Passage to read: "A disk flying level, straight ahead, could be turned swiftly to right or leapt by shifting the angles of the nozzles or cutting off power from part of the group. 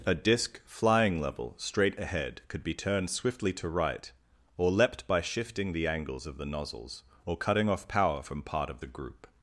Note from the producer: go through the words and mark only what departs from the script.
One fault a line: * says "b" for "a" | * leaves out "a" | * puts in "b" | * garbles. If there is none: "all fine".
all fine